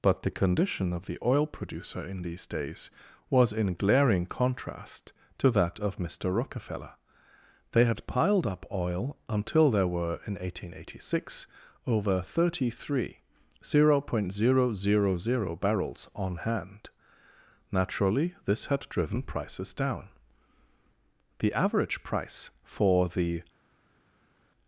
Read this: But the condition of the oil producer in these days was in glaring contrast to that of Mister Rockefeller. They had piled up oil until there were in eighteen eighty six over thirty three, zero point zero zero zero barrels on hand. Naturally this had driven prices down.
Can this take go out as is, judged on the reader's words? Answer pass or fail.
fail